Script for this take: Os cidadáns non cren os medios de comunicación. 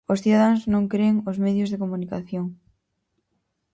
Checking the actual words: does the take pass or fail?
pass